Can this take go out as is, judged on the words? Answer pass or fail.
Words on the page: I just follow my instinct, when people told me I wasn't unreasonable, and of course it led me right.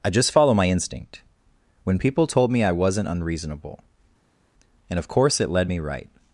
pass